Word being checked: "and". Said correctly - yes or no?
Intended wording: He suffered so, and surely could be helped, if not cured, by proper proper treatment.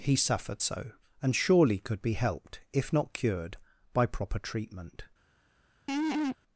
yes